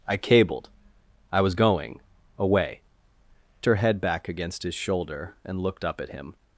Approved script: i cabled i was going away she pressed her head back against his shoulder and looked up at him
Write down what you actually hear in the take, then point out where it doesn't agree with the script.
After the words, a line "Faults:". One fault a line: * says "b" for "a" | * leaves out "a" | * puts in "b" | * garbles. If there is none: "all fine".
i cabled i was going away her head back against his shoulder and looked up at him
Faults:
* leaves out "she pressed"